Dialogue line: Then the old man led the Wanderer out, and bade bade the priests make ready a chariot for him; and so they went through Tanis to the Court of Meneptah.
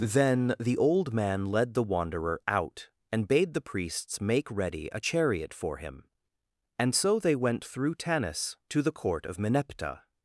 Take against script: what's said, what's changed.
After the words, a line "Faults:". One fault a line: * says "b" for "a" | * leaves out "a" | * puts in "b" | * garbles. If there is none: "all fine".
Then the old man led the Wanderer out, and bade the priests make ready a chariot for him; and so they went through Tanis to the Court of Meneptah.
Faults:
* leaves out "bade"